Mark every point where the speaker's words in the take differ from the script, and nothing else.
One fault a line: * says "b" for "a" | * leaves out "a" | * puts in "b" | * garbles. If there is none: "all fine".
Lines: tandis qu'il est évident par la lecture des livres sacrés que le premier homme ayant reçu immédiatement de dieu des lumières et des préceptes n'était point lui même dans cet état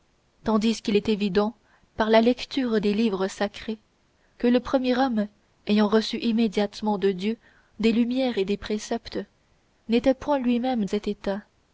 * leaves out "dans"